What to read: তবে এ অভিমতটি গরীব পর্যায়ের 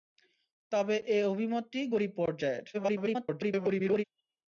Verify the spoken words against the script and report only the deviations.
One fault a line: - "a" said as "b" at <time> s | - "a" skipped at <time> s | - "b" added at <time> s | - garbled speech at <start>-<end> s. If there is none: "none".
- garbled speech at 2.7-4.0 s